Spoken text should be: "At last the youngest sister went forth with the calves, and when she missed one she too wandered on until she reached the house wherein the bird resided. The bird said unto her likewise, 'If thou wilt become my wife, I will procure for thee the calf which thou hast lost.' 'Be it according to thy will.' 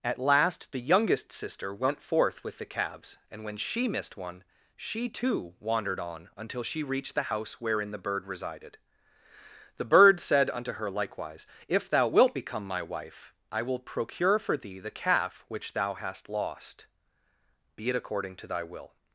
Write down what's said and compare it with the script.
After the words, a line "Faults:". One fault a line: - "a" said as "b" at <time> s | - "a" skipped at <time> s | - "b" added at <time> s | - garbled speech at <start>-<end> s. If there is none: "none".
"At last the youngest sister went forth with the calves, and when she missed one she too wandered on until she reached the house wherein the bird resided. The bird said unto her likewise, 'If thou wilt become my wife, I will procure for thee the calf which thou hast lost.' 'Be it according to thy will.'
Faults:
none